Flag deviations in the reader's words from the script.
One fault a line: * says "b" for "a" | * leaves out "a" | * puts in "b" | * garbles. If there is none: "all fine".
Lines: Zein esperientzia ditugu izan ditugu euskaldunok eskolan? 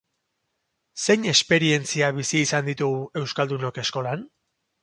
* says "bizi" for "ditugu"